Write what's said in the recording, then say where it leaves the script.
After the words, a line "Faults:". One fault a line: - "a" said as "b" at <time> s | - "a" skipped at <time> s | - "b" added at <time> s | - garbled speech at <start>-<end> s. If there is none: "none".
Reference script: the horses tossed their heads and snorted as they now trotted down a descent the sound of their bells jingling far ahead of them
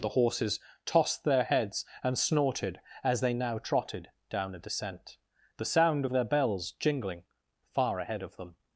the horses tossed their heads and snorted as they now trotted down a descent the sound of their bells jingling far ahead of them
Faults:
none